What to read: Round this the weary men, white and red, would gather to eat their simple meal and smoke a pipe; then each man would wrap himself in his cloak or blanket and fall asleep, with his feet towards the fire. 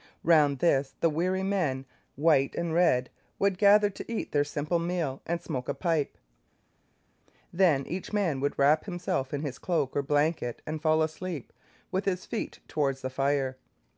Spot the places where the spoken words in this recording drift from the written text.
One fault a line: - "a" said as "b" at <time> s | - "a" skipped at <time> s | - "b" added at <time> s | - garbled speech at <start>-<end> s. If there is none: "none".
none